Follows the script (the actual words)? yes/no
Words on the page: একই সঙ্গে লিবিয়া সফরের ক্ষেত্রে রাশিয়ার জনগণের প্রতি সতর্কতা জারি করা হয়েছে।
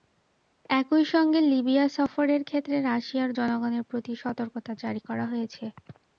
yes